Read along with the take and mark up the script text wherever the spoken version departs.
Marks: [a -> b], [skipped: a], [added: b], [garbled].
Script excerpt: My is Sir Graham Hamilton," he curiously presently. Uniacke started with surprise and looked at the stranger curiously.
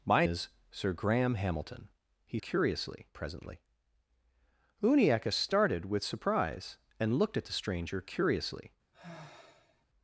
My is Sir Graham Hamilton," he curiously presently. Uniacke started with surprise and looked at the stranger curiously.